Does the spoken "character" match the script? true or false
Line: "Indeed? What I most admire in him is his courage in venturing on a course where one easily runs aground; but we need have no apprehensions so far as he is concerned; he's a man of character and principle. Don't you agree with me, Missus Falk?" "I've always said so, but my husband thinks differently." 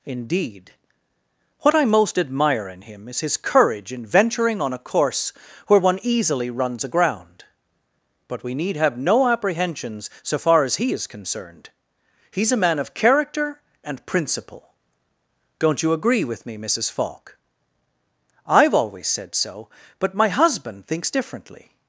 true